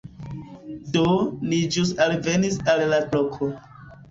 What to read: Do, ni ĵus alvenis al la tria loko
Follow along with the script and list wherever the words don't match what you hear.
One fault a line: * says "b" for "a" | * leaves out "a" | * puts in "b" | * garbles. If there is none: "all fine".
* leaves out "tria"